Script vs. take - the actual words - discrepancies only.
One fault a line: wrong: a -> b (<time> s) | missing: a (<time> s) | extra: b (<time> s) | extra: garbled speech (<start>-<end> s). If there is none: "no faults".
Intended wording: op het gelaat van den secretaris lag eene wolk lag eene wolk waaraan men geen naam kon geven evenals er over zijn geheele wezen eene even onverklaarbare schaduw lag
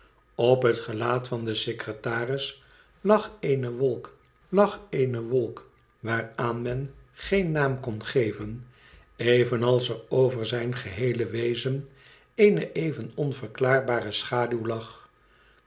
no faults